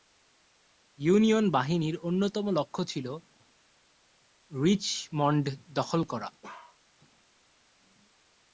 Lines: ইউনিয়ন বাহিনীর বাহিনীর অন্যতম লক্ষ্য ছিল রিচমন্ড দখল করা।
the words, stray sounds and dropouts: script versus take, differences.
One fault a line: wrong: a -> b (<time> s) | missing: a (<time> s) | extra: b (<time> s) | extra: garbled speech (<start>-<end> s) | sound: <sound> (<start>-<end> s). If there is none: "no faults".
missing: বাহিনীর (1.9 s)
sound: bark (6.4-6.8 s)